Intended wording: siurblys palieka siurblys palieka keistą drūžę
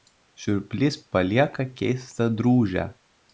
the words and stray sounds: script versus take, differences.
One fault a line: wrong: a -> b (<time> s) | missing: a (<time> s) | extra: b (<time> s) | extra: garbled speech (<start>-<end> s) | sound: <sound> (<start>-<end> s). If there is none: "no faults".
missing: siurblys palieka (1.7 s)